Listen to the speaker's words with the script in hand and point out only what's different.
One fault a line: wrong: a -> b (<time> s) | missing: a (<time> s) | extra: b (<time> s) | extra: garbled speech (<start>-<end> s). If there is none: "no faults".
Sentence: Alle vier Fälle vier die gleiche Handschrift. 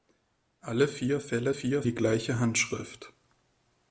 no faults